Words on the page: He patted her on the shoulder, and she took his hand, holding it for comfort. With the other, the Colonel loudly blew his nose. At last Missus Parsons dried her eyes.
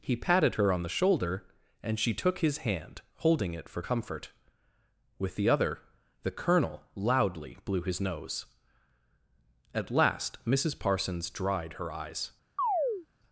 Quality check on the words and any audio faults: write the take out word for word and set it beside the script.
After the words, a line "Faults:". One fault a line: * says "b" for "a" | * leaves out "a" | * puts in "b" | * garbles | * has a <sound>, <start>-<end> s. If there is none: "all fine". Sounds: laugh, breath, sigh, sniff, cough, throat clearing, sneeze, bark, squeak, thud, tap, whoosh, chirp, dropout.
He patted her on the shoulder, and she took his hand, holding it for comfort. With the other, the Colonel loudly blew his nose. At last Missus Parsons dried her eyes.
Faults:
* has a chirp, 12.6-13.1 s